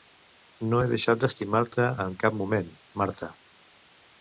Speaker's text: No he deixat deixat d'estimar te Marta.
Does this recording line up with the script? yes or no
no